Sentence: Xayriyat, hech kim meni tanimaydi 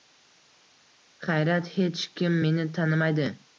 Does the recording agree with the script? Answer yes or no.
yes